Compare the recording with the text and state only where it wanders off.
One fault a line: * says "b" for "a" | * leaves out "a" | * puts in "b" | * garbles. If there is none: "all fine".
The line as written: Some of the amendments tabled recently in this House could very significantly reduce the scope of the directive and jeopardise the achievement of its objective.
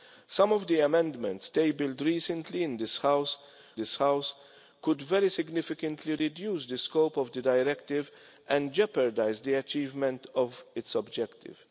* puts in "this House"